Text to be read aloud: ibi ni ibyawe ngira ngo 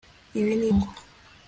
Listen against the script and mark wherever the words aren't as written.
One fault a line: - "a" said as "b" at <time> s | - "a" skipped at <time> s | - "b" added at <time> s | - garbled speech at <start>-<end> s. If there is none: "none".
- "ibyawe ngira" skipped at 0.7 s